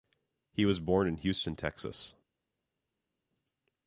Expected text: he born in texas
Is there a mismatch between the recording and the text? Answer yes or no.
yes